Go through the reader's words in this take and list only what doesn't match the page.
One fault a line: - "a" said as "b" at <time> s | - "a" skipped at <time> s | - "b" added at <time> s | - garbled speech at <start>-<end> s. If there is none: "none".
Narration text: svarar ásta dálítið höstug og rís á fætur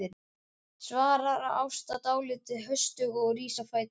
none